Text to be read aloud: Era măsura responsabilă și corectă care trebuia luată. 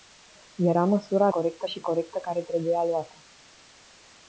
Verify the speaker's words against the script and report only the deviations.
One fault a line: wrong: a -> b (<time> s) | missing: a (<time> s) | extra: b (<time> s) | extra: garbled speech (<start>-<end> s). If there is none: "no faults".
wrong: responsabilă -> corectă (1.3 s)